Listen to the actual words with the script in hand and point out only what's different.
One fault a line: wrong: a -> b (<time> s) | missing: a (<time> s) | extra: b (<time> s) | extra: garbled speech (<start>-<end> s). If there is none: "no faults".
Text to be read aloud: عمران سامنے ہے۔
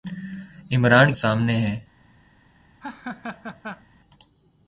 no faults